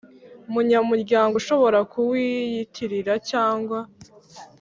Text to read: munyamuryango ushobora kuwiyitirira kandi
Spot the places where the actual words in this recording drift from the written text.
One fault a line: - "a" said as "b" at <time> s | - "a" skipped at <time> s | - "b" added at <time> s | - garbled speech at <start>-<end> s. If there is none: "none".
- "kandi" said as "cyangwa" at 3.3 s